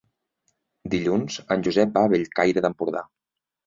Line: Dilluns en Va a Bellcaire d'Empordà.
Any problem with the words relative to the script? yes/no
yes